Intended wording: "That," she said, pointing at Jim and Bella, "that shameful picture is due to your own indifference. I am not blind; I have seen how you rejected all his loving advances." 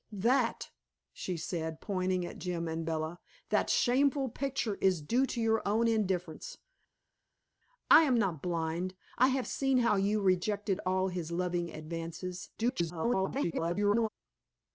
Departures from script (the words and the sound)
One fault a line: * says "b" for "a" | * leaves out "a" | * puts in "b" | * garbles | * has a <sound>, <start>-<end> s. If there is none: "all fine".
* garbles